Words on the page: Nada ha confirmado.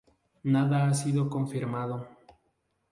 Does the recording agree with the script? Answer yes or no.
no